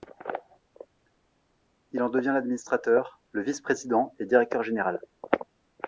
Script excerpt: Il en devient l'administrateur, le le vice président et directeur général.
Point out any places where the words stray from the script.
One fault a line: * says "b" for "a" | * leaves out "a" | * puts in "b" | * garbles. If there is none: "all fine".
* leaves out "le"